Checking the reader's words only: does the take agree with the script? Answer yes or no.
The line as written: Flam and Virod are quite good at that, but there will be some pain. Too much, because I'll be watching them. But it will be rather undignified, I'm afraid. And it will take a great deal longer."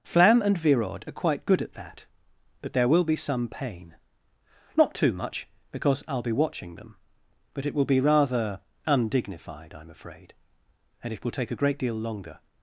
no